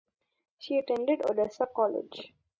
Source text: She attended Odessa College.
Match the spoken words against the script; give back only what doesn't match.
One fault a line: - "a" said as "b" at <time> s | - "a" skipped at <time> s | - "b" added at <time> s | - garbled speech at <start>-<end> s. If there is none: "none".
none